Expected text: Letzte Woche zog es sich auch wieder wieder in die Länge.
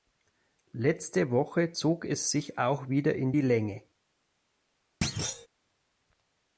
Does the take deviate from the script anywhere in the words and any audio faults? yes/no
yes